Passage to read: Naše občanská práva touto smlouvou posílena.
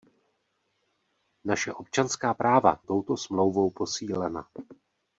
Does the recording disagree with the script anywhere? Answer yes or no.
no